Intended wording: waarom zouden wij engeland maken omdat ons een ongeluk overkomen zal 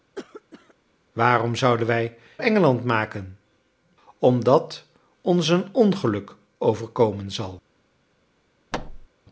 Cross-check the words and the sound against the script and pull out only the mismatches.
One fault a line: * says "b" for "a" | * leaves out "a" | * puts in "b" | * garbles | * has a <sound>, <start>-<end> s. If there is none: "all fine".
* has a cough, 0.2-0.8 s
* has a thud, 8.7-9.1 s